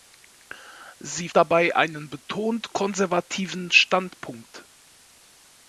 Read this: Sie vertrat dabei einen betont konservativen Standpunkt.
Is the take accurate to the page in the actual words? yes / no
no